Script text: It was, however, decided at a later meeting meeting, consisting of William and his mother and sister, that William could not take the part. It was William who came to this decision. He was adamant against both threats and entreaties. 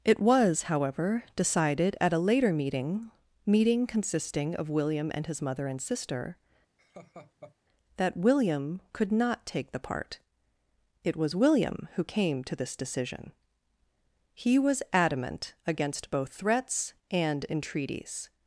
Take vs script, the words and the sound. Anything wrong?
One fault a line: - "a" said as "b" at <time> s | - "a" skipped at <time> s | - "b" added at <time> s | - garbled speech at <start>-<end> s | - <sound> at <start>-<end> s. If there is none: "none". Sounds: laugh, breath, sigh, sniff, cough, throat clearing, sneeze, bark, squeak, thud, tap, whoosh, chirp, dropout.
- laugh at 6.8-7.6 s